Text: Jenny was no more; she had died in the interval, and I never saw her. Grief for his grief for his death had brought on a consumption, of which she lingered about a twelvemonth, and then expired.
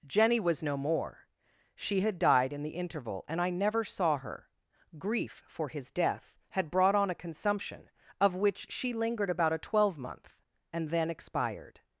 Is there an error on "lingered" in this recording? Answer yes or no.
no